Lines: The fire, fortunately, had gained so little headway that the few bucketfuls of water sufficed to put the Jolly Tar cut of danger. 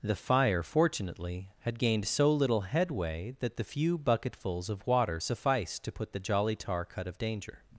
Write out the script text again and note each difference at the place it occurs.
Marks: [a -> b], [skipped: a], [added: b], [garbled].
The fire, fortunately, had gained so little headway that the few bucketfuls of water sufficed to put the Jolly Tar cut of danger.